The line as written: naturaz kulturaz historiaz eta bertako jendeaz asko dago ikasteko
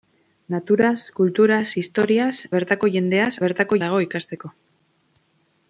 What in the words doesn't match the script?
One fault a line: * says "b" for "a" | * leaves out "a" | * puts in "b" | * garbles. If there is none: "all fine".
* leaves out "eta"
* says "bertako" for "asko"